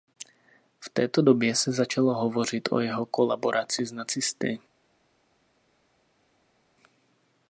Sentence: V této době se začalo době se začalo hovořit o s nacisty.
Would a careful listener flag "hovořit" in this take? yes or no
yes